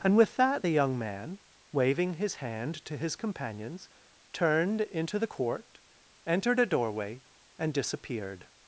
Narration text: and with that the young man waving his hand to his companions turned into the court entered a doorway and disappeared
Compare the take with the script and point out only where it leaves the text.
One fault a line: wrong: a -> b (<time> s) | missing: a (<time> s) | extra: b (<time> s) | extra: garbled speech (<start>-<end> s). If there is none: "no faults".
no faults